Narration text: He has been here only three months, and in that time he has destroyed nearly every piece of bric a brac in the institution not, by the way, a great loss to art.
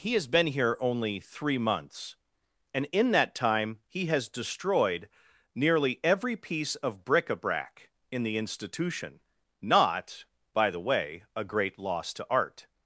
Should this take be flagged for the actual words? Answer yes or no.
no